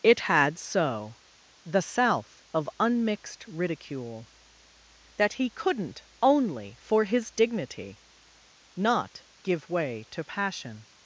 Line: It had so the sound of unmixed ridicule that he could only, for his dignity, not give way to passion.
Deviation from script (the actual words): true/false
true